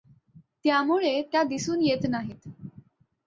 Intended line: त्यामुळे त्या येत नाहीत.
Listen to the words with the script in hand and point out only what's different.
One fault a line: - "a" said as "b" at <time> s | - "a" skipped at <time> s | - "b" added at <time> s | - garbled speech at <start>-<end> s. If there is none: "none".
- "दिसून" added at 1.4 s